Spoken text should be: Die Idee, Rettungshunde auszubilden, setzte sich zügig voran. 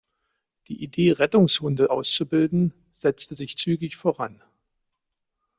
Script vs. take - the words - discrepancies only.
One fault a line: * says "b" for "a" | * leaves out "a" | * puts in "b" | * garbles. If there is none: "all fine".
all fine